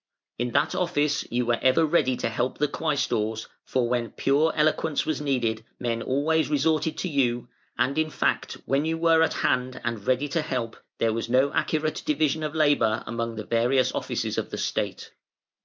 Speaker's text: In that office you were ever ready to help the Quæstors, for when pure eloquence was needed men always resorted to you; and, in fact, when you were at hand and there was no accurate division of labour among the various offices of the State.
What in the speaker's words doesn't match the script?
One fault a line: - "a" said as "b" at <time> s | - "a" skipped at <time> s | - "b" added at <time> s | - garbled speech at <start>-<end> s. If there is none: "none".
- "ready to help" added at 10.1 s